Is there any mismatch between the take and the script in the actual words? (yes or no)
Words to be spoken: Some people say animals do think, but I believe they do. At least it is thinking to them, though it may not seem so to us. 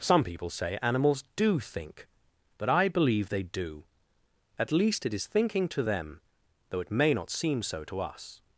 no